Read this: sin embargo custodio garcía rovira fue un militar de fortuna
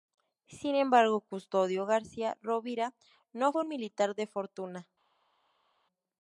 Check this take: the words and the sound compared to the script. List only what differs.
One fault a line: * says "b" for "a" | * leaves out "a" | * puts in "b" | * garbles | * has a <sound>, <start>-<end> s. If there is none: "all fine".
* puts in "no"